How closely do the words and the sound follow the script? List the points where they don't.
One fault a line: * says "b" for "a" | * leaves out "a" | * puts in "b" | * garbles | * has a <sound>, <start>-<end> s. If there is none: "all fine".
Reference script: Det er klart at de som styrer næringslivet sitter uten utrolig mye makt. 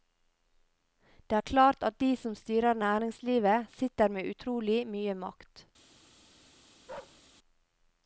* says "med" for "uten"
* has a bark, 6.9-7.2 s